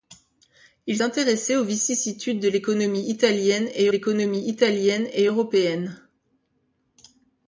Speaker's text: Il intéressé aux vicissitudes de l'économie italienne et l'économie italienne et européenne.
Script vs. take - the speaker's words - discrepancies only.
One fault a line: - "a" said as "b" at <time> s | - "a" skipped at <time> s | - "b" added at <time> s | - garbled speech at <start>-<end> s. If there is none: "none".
none